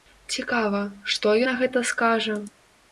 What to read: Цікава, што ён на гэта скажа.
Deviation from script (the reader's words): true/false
true